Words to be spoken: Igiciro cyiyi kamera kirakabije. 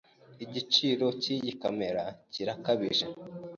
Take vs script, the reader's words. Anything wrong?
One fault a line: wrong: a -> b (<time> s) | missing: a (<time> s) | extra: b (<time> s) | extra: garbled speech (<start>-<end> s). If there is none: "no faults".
no faults